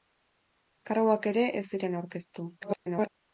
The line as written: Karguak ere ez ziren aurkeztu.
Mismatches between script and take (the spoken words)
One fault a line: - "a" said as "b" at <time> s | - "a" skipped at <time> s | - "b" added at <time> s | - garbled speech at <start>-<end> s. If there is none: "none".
- garbled speech at 2.6-3.1 s